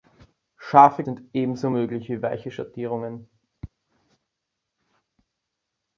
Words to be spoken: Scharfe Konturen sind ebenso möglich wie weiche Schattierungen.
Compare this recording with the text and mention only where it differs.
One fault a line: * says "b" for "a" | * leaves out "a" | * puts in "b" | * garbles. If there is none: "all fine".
* leaves out "Konturen"